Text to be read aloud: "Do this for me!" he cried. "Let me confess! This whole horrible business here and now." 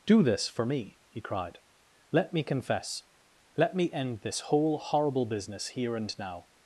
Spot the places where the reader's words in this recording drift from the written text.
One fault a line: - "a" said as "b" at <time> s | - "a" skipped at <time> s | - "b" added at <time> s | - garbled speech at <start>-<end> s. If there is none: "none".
- "Let me end" added at 3.6 s